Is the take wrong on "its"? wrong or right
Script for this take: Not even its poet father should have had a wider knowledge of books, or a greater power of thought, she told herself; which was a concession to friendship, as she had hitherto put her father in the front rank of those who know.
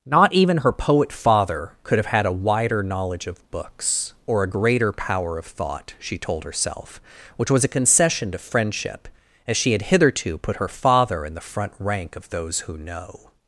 wrong